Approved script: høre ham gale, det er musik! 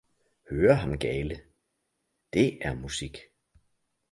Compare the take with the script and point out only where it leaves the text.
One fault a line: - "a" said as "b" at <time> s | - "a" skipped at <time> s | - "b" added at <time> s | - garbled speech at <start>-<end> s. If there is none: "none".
none